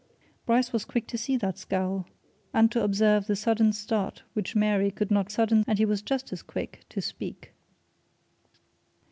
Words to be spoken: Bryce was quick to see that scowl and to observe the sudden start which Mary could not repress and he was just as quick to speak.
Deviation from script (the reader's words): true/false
true